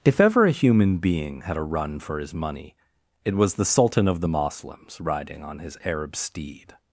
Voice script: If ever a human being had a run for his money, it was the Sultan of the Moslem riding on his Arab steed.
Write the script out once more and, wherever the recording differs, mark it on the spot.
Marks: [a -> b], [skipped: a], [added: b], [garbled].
If ever a human being had a run for his money, it was the Sultan of the [Moslem -> Moslems] riding on his Arab steed.